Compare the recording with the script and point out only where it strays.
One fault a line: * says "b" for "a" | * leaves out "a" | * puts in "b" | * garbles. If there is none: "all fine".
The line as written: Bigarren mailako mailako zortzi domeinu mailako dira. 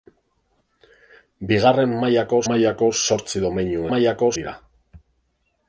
all fine